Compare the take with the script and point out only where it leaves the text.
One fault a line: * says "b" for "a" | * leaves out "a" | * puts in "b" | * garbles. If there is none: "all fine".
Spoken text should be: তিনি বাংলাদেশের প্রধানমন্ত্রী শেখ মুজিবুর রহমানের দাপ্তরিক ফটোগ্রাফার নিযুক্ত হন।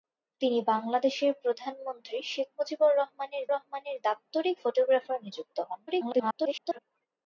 * puts in "রহমানের"
* garbles